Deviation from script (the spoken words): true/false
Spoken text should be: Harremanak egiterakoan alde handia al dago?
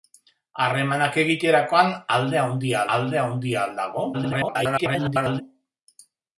true